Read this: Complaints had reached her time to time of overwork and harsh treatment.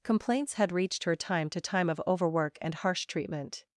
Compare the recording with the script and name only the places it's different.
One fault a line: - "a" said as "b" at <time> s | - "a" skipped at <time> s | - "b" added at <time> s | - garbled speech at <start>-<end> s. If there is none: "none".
none